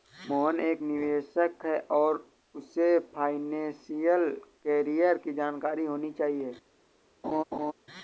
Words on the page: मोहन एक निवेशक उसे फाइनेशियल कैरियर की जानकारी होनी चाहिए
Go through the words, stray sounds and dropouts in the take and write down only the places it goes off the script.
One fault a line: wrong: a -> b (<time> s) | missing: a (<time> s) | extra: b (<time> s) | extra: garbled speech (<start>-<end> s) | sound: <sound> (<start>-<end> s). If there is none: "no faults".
extra: है और (1.6 s)
sound: laugh (7.2-7.7 s)